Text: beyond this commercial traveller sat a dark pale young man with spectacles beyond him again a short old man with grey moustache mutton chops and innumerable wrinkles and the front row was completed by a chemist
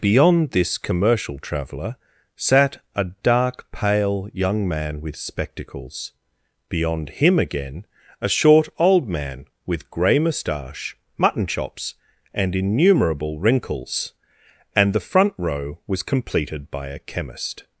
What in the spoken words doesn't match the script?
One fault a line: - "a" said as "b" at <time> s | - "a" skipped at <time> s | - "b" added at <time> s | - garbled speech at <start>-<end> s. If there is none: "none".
none